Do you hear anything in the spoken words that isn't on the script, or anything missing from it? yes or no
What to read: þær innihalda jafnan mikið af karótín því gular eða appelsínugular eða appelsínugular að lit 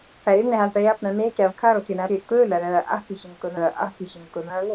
no